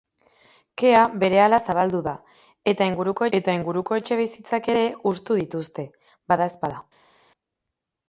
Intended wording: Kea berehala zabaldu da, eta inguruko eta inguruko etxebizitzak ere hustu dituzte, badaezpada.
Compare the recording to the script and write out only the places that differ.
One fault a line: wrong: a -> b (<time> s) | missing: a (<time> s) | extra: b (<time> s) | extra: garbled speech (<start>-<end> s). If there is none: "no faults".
no faults